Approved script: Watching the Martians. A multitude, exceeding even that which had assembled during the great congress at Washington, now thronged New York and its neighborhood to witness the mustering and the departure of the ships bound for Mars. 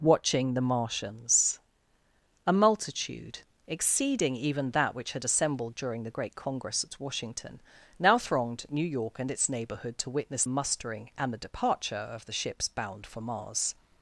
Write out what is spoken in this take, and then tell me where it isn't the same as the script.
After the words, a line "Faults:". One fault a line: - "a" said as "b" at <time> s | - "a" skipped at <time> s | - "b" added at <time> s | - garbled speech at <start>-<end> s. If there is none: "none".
Watching the Martians. A multitude, exceeding even that which had assembled during the great congress at Washington, now thronged New York and its neighborhood to witness mustering and the departure of the ships bound for Mars.
Faults:
- "the" skipped at 10.4 s